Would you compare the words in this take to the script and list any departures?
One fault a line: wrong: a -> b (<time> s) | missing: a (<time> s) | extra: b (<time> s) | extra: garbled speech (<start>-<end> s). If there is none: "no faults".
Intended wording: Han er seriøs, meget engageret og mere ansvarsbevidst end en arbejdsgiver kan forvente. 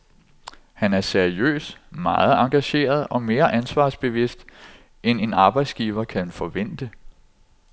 no faults